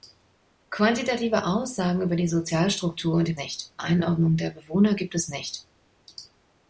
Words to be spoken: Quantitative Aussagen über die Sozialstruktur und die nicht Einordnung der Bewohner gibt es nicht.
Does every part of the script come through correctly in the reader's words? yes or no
yes